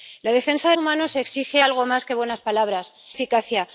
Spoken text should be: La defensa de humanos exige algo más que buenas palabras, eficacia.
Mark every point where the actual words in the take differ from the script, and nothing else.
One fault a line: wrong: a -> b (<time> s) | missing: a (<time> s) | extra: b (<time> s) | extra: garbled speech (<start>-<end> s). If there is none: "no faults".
no faults